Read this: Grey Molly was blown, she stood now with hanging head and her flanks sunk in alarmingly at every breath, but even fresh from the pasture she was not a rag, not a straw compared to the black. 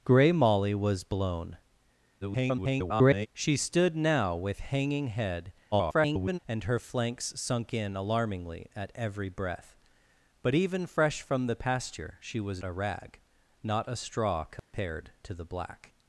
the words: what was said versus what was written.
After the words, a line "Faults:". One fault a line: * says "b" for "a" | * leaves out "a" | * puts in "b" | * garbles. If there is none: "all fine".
Grey Molly was blown, [garbled] she stood now with hanging head [garbled] and her flanks sunk in alarmingly at every breath, but even fresh from the pasture she was a rag, not a straw compared to the black.
Faults:
* garbles
* garbles
* leaves out "not"